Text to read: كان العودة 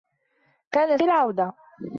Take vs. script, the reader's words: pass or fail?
pass